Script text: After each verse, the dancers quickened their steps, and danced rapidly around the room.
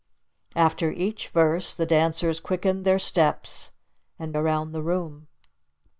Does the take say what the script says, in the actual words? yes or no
no